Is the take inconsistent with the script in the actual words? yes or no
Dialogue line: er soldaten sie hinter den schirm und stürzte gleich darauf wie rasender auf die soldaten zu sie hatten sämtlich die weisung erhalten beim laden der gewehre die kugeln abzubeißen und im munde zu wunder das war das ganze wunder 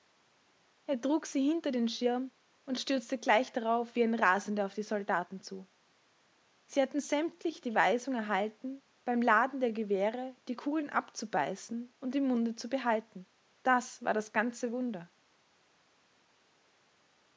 yes